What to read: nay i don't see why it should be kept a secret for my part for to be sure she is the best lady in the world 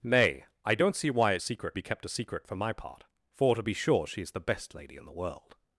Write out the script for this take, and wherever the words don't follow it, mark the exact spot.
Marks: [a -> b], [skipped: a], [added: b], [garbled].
nay i don't see why it [should -> secret] be kept a secret for my part for to be sure she is the best lady in the world